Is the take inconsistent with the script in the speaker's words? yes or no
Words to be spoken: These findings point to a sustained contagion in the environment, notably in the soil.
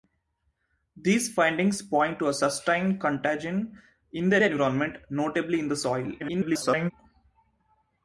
yes